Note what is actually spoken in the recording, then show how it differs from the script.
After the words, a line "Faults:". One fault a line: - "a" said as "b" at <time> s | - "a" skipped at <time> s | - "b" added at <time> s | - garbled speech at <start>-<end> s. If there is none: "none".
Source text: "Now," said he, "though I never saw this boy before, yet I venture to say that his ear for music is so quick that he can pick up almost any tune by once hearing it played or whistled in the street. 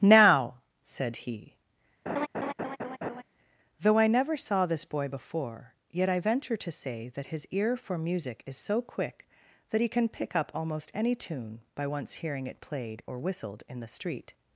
"Now," said he, "though I never saw this boy before, yet I venture to say that his ear for music is so quick that he can pick up almost any tune by once hearing it played or whistled in the street.
Faults:
none